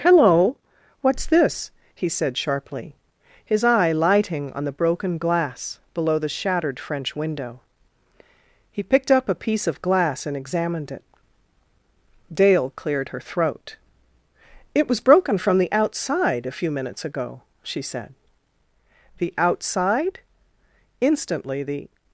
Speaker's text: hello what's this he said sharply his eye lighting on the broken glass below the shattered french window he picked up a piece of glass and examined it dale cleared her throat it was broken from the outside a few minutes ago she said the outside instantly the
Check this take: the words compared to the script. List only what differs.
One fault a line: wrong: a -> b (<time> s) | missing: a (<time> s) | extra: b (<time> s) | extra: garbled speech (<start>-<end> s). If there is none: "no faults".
no faults